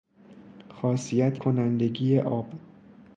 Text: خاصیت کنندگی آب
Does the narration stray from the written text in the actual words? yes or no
no